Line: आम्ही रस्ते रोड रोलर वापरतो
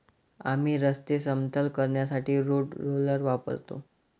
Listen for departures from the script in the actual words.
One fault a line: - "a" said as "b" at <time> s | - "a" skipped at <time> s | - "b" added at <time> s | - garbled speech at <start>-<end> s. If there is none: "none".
- "समतल करण्यासाठी" added at 1.2 s